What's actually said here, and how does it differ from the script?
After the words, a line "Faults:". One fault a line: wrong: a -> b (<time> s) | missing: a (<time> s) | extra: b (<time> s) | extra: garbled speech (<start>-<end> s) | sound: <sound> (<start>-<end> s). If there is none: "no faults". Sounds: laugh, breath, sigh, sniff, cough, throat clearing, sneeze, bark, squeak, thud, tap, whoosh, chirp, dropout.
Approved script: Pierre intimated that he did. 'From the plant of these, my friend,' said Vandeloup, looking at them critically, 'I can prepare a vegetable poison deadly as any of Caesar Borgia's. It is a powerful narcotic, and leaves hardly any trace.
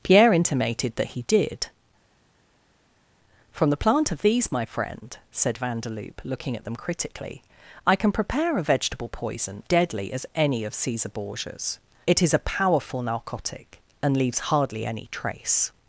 Pierre intimated that he did. 'From the plant of these, my friend,' said Vandeloup, looking at them critically, 'I can prepare a vegetable poison deadly as any of Caesar Borgia's. It is a powerful narcotic, and leaves hardly any trace.
Faults:
no faults